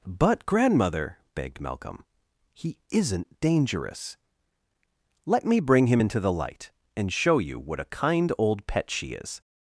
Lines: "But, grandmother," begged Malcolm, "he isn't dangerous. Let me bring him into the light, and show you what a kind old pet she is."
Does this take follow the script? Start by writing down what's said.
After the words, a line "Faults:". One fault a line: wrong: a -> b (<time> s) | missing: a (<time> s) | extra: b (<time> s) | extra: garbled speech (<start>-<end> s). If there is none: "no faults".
"But, grandmother," begged Malcolm, "he isn't dangerous. Let me bring him into the light, and show you what a kind old pet she is."
Faults:
no faults